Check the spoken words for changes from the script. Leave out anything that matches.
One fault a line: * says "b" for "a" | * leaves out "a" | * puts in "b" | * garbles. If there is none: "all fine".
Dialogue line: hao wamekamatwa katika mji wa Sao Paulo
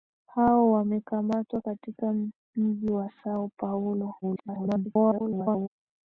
* garbles